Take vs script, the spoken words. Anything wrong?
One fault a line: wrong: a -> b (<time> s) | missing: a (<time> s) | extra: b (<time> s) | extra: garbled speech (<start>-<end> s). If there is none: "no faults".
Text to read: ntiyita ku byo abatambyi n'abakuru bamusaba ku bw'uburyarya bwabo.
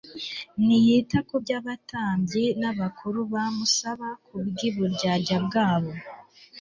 no faults